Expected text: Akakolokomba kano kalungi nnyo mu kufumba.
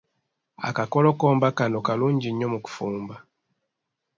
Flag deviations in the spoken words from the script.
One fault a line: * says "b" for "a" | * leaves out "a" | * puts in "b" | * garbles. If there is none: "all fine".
all fine